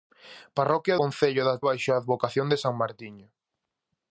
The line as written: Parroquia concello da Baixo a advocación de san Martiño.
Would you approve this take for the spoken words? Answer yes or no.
yes